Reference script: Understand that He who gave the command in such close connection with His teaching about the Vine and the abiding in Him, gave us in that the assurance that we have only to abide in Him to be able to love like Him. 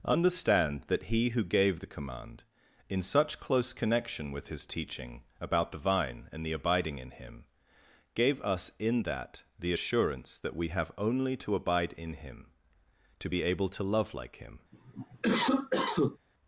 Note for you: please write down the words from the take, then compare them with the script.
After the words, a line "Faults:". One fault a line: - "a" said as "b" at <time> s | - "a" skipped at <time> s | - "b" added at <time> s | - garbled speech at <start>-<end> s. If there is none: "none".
Understand that He who gave the command in such close connection with His teaching about the Vine and the abiding in Him, gave us in that the assurance that we have only to abide in Him to be able to love like Him.
Faults:
none